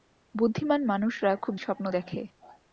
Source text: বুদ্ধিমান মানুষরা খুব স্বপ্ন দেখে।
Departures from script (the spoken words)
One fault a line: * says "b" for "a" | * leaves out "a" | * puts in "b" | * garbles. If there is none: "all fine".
all fine